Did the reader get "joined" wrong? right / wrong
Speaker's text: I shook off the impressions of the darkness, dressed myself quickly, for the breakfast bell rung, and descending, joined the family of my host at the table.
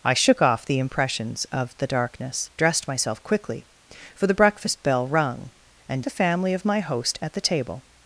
wrong